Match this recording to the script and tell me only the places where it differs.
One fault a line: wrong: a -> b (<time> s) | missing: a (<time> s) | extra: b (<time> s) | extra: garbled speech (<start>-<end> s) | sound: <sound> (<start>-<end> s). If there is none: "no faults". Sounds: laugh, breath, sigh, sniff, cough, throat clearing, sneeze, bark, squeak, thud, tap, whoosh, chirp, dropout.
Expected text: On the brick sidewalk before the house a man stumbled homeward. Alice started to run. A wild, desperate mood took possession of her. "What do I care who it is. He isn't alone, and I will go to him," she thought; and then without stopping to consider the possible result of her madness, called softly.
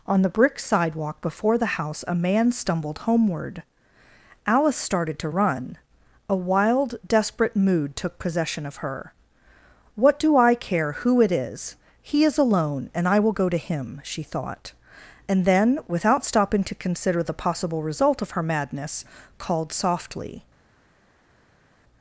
wrong: isn't -> is (12.2 s)